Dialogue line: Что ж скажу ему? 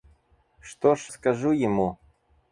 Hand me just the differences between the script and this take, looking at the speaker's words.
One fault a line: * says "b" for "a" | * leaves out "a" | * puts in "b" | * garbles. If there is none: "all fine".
all fine